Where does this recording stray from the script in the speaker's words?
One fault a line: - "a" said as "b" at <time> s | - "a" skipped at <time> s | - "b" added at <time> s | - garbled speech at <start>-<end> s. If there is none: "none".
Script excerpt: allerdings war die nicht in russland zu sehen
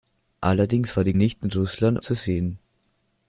none